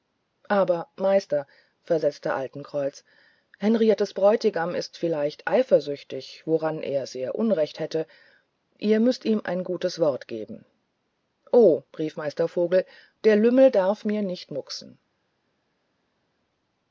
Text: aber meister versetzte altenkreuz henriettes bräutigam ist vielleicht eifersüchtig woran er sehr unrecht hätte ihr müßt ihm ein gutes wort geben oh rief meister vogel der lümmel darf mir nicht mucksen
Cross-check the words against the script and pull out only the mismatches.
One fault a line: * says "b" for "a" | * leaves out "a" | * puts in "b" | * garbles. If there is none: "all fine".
all fine